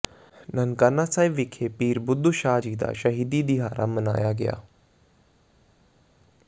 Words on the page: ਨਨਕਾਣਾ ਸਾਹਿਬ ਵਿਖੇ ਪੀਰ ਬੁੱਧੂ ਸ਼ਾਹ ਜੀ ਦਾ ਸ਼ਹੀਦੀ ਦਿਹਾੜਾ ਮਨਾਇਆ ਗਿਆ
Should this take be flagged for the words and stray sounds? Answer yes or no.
no